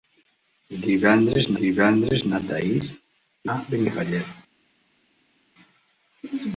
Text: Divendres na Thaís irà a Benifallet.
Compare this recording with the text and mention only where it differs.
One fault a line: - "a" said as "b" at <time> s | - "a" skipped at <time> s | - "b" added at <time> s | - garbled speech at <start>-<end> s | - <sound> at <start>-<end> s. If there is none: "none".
- "divendres" added at 1.6 s
- "irà" skipped at 2.9 s